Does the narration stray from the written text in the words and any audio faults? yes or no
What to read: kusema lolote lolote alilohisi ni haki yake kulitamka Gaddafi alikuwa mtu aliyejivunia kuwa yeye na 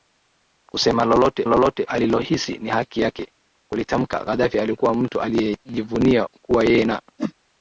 yes